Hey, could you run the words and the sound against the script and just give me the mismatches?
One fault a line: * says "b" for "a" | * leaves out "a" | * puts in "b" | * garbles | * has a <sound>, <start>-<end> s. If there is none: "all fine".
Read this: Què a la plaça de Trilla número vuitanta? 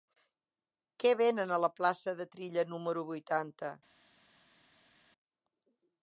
* puts in "venen"